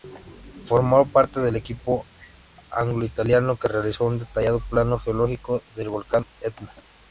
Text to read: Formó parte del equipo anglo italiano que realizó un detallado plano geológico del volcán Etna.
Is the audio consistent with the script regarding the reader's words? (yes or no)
yes